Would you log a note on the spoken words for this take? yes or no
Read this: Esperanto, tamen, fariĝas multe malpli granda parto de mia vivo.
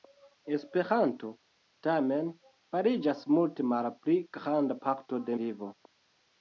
yes